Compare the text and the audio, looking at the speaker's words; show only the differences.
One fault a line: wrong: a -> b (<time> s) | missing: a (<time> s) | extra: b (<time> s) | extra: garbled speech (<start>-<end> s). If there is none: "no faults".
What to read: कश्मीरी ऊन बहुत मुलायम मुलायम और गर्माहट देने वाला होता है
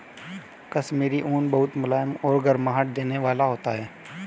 missing: मुलायम (2.1 s)